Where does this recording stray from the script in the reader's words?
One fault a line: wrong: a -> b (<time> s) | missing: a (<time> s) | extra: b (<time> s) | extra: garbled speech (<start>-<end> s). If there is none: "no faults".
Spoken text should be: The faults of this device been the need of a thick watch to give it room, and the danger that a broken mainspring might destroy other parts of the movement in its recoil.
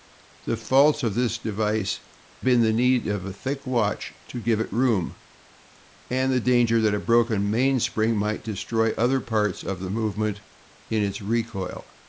no faults